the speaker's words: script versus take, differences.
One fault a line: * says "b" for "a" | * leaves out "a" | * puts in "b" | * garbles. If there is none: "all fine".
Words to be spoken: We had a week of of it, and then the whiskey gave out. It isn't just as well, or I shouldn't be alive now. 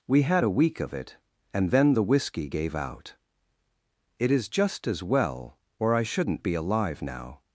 * leaves out "of"
* says "is" for "isn't"